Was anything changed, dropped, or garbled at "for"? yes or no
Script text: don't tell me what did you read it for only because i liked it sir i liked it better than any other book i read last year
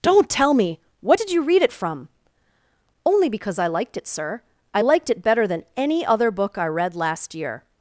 yes